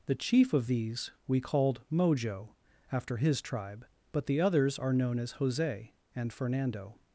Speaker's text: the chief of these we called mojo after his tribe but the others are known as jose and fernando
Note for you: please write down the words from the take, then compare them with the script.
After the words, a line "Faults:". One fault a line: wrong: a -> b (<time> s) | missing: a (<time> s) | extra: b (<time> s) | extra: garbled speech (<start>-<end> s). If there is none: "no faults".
the chief of these we called mojo after his tribe but the others are known as jose and fernando
Faults:
no faults